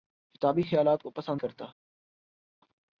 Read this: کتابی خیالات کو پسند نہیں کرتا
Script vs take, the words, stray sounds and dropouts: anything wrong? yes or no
yes